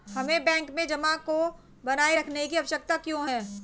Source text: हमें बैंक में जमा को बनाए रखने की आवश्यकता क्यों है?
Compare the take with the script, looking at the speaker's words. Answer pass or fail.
pass